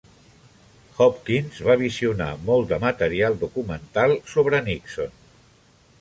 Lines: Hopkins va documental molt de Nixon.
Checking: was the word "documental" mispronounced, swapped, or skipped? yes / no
yes